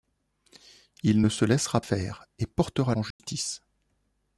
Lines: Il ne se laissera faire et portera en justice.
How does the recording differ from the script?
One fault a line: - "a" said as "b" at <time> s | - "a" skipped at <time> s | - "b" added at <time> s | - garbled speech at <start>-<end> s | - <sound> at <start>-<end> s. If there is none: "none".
- dropout at 3.1-3.2 s